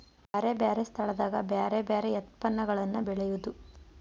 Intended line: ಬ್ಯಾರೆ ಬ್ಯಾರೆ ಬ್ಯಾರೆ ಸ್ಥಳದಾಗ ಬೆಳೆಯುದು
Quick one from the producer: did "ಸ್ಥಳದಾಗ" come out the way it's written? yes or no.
no